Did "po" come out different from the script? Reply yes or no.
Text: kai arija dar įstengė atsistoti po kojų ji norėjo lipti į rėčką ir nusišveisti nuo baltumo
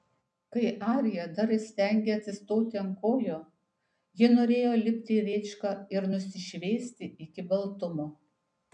yes